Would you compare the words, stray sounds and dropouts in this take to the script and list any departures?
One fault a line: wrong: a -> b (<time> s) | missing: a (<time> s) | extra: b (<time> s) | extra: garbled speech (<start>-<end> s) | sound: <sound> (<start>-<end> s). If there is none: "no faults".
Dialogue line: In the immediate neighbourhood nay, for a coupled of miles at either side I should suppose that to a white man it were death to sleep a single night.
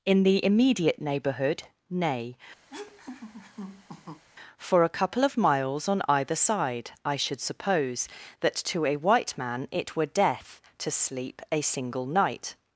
sound: laugh (2.7-4.2 s)
wrong: coupled -> couple (4.9 s)
wrong: at -> on (5.9 s)